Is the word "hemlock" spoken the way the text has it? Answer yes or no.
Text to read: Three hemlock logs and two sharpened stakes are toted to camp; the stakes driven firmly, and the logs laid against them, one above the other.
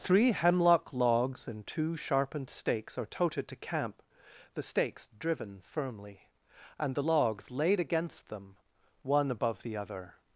yes